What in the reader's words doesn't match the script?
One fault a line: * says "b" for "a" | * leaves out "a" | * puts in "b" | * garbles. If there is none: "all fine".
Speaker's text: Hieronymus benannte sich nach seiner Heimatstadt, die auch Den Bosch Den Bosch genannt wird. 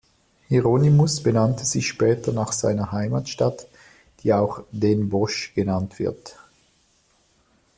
* puts in "später"
* leaves out "Den Bosch"